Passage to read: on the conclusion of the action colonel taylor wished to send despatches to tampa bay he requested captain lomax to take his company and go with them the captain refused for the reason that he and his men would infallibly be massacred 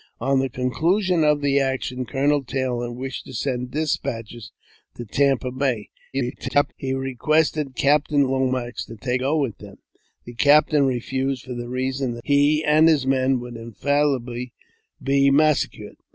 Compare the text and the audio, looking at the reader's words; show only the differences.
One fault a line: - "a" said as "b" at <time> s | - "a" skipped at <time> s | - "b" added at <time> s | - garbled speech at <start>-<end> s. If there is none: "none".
- garbled speech at 6.1-6.7 s
- "his company and" skipped at 9.2 s